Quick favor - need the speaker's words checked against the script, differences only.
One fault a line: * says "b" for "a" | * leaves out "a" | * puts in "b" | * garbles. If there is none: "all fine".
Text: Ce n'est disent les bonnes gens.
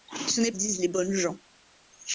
all fine